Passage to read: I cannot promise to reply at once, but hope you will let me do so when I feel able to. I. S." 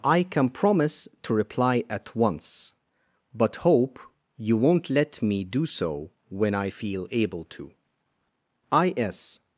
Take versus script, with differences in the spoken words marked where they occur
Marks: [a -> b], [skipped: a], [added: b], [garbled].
I [cannot -> can] promise to reply at once, but hope you [will -> won't] let me do so when I feel able to. I. S."